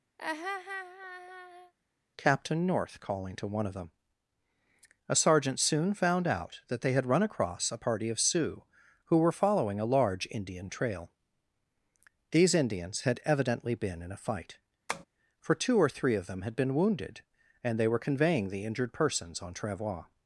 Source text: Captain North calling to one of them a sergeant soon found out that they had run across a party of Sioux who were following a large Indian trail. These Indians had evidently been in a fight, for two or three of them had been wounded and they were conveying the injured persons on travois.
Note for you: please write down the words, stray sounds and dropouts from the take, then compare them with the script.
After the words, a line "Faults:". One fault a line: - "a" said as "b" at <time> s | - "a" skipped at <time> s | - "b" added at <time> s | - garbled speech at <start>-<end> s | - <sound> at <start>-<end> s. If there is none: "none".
Captain North calling to one of them a sergeant soon found out that they had run across a party of Sioux who were following a large Indian trail. These Indians had evidently been in a fight, for two or three of them had been wounded and they were conveying the injured persons on travois.
Faults:
- laugh at 0.2-1.7 s
- tap at 14.9-15.1 s